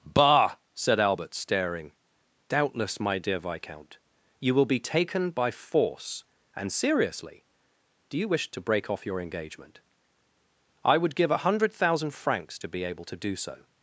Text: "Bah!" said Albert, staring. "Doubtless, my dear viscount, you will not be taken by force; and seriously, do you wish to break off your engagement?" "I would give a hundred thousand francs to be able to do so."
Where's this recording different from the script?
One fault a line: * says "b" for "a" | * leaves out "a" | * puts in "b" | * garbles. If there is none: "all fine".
* leaves out "not"